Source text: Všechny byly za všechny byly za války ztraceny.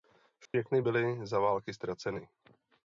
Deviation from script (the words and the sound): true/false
true